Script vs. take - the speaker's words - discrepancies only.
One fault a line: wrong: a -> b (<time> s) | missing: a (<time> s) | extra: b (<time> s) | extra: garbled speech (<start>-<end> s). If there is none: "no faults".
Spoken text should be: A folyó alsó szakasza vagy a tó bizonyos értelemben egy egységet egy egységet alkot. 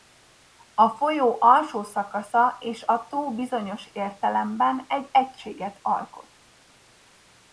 wrong: vagy -> és (2.6 s)
missing: egy egységet (5.8 s)